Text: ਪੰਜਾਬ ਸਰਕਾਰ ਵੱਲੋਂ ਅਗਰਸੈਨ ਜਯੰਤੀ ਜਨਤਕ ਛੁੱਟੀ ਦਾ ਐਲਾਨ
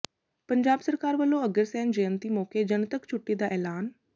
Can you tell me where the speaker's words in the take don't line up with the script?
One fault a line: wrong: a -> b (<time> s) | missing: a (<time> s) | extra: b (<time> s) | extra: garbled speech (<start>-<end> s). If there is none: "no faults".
extra: ਮੌਕੇ (2.3 s)